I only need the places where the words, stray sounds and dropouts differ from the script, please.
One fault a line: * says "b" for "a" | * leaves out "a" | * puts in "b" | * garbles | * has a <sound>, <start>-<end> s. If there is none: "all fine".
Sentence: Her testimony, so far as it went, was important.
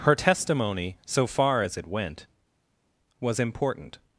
all fine